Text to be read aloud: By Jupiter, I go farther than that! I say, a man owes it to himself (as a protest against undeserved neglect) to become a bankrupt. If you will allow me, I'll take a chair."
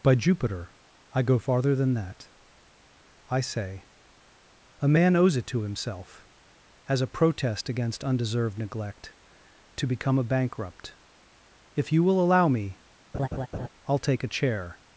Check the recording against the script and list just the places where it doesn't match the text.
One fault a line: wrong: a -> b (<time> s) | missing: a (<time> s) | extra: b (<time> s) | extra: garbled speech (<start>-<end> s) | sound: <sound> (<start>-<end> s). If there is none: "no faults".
sound: laugh (13.1-13.7 s)